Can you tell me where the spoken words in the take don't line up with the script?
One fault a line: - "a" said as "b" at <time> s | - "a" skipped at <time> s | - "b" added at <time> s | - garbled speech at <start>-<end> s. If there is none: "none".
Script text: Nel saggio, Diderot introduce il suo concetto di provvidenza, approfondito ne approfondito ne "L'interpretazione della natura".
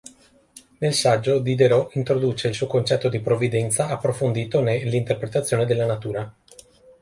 - "approfondito ne" skipped at 4.8 s